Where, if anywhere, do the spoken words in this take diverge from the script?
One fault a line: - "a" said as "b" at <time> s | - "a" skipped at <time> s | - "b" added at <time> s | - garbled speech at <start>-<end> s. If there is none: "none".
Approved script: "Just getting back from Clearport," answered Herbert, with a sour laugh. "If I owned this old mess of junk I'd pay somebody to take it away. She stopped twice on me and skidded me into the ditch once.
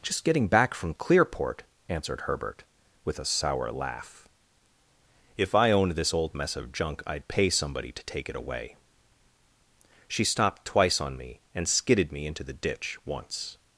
none